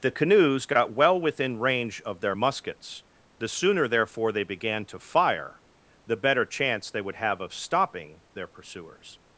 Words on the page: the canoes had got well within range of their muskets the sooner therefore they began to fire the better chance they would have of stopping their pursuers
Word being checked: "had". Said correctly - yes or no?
no